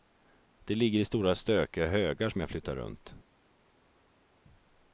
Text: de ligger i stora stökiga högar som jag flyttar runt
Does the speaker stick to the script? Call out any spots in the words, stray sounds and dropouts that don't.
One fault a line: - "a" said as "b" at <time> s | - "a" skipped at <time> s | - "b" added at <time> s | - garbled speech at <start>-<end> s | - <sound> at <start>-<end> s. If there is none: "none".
none